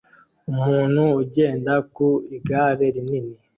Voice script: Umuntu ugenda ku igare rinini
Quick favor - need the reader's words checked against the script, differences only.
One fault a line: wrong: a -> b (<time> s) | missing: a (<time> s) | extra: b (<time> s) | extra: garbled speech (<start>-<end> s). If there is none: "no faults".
no faults